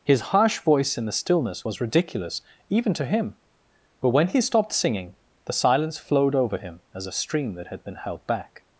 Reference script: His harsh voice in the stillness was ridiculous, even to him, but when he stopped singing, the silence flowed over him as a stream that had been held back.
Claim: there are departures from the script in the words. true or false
false